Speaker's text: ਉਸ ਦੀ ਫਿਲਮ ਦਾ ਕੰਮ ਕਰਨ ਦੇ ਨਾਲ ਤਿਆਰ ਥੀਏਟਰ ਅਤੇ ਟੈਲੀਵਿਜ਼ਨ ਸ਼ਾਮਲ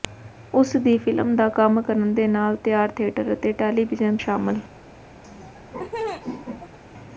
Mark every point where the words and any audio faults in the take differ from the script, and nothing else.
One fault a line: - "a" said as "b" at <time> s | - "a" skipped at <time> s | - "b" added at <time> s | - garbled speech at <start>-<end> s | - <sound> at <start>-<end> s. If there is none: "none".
- laugh at 5.2-6.8 s